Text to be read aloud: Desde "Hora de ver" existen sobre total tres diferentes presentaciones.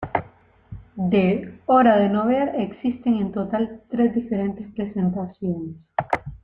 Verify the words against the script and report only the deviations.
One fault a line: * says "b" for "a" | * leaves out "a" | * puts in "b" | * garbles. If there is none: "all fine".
* says "De" for "Desde"
* puts in "no"
* says "en" for "sobre"